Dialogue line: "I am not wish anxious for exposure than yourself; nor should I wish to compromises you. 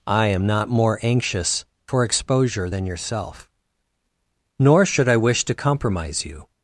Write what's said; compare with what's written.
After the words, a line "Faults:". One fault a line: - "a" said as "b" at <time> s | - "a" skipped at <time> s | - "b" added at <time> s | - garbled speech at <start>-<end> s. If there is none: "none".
"I am not more anxious for exposure than yourself; nor should I wish to compromise you.
Faults:
- "wish" said as "more" at 0.7 s
- "compromises" said as "compromise" at 5.5 s